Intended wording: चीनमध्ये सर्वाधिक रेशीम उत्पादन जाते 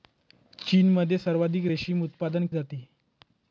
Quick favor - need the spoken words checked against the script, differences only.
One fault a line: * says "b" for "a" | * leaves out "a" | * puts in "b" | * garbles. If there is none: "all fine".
all fine